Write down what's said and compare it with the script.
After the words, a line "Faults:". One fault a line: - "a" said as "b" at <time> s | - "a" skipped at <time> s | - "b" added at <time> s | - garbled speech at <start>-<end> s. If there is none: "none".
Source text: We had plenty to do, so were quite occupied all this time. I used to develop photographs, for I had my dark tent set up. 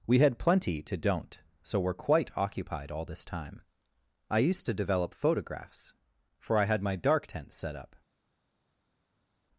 We had plenty to don't, so were quite occupied all this time. I used to develop photographs, for I had my dark tent set up.
Faults:
- "do" said as "don't" at 1.0 s